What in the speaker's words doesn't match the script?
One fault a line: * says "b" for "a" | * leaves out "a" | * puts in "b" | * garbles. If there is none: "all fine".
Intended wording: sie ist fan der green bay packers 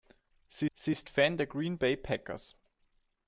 * puts in "sie"